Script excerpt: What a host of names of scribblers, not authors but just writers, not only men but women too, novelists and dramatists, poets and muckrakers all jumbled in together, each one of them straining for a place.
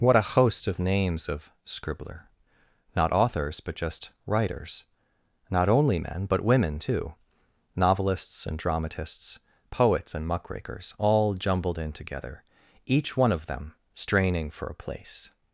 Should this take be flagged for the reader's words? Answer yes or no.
yes